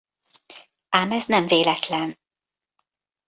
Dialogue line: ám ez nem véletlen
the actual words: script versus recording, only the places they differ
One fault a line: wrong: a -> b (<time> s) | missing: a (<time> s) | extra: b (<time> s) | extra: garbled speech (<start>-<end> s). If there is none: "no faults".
no faults